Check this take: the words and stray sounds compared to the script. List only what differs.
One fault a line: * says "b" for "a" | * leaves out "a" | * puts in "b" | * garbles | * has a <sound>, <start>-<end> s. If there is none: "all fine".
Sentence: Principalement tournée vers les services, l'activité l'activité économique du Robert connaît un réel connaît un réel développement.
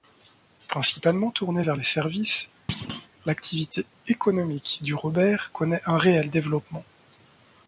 * has a thud, 2.7-3.1 s
* leaves out "l'activité"
* leaves out "connaît un réel"